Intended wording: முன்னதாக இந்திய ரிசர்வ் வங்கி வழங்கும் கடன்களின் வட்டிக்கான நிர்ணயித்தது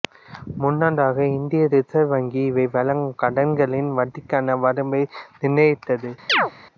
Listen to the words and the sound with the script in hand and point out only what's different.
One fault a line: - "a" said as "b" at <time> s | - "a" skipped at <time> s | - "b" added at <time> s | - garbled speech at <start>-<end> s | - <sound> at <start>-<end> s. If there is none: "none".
- "இவை" added at 2.4 s
- "வரம்பை" added at 4.6 s
- chirp at 6.3-6.5 s